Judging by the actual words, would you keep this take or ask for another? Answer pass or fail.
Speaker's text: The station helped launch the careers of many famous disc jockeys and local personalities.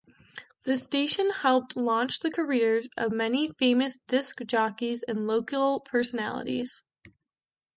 pass